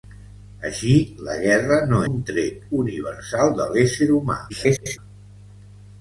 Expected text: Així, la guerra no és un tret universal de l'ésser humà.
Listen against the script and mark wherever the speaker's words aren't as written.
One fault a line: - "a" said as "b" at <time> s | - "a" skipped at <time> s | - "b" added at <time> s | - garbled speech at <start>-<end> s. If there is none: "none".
- "és" skipped at 2.0 s
- garbled speech at 4.5-5.0 s